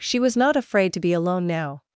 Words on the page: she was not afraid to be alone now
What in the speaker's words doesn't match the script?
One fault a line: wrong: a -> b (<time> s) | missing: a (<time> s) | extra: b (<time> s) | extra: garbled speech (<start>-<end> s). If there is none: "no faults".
no faults